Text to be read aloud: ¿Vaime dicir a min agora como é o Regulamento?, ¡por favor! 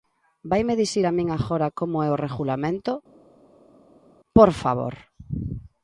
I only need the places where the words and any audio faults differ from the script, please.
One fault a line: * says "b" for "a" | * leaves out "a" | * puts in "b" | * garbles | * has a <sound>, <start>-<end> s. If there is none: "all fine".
all fine